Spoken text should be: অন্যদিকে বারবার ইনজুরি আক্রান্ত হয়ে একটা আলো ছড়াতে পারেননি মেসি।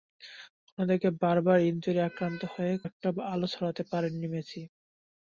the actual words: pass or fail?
pass